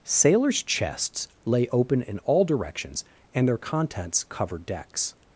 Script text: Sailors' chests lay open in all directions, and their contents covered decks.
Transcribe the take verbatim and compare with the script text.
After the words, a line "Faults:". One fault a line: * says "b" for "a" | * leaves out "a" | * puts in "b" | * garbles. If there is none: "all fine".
Sailors' chests lay open in all directions, and their contents covered decks.
Faults:
all fine